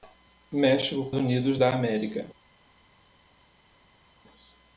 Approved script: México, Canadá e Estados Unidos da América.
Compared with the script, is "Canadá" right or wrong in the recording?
wrong